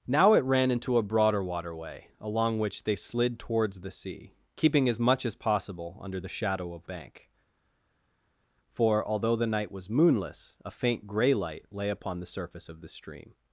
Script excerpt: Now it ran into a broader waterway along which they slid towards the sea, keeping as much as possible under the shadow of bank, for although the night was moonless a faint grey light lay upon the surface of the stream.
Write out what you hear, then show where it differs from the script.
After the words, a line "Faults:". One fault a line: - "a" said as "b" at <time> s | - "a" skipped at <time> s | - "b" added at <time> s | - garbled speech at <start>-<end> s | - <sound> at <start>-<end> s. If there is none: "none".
Now it ran into a broader waterway along which they slid towards the sea, keeping as much as possible under the shadow of bank, for although the night was moonless a faint grey light lay upon the surface of the stream.
Faults:
none